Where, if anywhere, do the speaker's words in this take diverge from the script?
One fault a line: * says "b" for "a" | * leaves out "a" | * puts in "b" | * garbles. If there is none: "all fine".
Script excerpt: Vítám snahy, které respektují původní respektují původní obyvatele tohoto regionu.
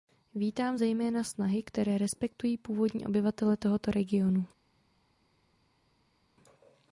* puts in "zejména"
* leaves out "respektují původní"